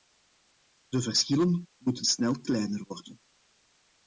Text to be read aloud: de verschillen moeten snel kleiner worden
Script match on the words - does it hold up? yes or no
yes